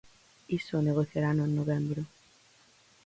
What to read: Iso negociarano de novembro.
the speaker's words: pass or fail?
fail